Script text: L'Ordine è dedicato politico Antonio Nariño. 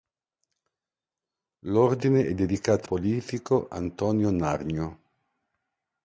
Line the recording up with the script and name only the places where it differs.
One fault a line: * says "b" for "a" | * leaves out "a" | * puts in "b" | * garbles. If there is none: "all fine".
all fine